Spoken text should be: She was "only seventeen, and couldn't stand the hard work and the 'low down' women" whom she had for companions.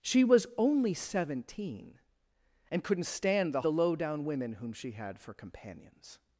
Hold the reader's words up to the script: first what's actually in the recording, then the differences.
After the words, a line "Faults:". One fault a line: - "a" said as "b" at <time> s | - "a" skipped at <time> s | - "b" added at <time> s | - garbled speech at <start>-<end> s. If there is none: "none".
She was "only seventeen, and couldn't stand the the 'low down' women" whom she had for companions.
Faults:
- "hard work and" skipped at 3.6 s